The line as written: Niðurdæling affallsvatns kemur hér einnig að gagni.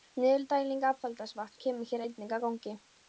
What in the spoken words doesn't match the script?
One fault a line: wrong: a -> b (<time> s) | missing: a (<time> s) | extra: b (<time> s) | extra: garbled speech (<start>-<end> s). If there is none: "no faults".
no faults